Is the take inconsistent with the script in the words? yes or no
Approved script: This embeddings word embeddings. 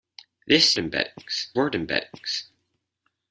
no